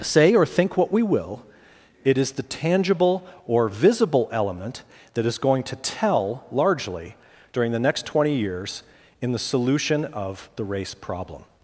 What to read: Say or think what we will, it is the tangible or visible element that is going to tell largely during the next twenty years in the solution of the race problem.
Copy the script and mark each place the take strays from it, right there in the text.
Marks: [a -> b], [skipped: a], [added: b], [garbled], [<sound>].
Say or think what we will, it is the tangible or visible element that is going to tell largely during the next twenty years in the solution of the race problem.